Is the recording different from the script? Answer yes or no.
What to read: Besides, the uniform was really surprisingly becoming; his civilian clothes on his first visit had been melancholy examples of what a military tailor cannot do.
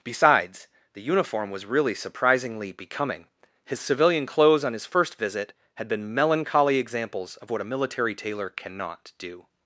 no